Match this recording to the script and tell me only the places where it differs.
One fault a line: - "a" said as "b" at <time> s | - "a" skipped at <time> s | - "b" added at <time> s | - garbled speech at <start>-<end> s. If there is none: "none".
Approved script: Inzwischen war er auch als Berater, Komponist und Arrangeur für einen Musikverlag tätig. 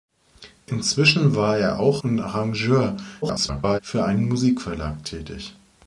- "als Berater Komponist" skipped at 2.0 s
- garbled speech at 3.2-3.8 s